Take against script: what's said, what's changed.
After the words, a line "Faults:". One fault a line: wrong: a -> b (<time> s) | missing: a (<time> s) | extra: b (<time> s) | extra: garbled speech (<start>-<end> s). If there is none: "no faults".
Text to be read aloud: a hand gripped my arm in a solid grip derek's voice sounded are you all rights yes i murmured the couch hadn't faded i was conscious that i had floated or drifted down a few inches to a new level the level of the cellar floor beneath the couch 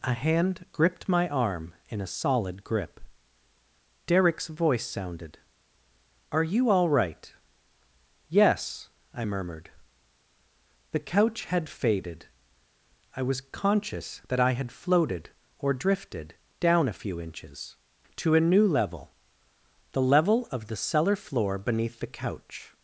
a hand gripped my arm in a solid grip derek's voice sounded are you all right yes i murmured the couch had faded i was conscious that i had floated or drifted down a few inches to a new level the level of the cellar floor beneath the couch
Faults:
wrong: rights -> right (6.9 s)
wrong: hadn't -> had (11.4 s)